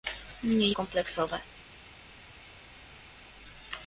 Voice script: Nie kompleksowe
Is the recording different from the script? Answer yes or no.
no